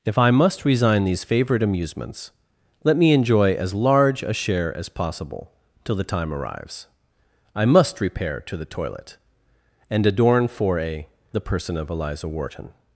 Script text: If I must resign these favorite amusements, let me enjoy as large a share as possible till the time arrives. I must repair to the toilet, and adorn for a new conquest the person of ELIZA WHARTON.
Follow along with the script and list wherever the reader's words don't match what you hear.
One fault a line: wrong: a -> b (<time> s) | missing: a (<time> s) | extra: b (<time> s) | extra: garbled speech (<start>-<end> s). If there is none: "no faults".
missing: new conquest (11.1 s)